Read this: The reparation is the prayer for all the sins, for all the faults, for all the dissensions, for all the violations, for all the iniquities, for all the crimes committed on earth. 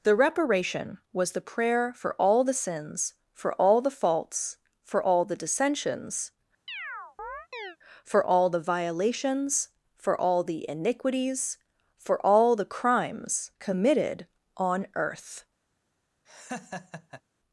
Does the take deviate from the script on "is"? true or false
true